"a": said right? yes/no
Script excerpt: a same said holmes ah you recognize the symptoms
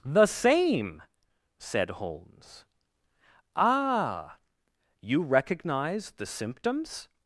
no